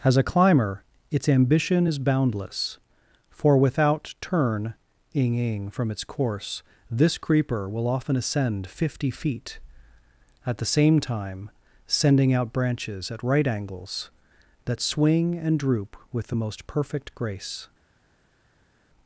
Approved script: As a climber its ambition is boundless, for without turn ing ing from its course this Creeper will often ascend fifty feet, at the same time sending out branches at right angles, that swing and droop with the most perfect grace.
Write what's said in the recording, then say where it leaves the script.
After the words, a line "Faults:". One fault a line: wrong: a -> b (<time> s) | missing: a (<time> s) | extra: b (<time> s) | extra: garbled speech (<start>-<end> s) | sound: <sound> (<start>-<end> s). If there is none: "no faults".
As a climber its ambition is boundless, for without turn ing ing from its course this Creeper will often ascend fifty feet, at the same time sending out branches at right angles, that swing and droop with the most perfect grace.
Faults:
no faults